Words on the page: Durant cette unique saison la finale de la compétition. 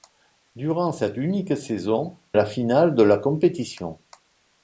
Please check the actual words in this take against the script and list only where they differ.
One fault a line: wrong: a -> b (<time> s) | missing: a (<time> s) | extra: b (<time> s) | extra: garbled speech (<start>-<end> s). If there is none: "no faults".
no faults